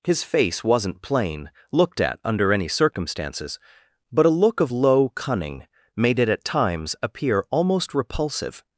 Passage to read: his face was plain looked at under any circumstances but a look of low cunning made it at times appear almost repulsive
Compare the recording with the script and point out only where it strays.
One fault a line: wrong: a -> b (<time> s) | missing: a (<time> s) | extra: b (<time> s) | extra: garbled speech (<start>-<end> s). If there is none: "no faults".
wrong: was -> wasn't (0.6 s)